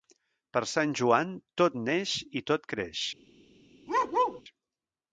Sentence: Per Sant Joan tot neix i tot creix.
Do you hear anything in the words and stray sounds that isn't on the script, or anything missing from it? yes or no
yes